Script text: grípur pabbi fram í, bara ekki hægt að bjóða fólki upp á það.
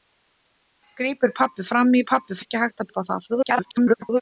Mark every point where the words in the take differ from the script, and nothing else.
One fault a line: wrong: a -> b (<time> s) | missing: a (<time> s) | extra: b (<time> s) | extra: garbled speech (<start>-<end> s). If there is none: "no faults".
wrong: bara -> pabbi (2.1 s)
missing: bjóða fólki (2.9 s)
extra: garbled speech (3.3-4.2 s)